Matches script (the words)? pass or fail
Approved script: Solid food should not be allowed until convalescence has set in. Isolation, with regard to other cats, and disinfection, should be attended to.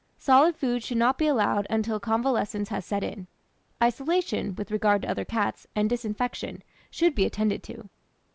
pass